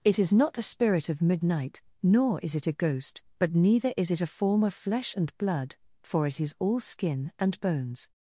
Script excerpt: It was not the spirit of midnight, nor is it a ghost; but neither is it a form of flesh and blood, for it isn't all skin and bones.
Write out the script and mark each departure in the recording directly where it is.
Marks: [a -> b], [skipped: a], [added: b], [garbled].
It [was -> is] not the spirit of midnight, nor is it a ghost; but neither is it a form of flesh and blood, for it [isn't -> is] all skin and bones.